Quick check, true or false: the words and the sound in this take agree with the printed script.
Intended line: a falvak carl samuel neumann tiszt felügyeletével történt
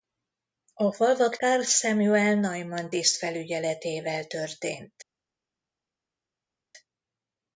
true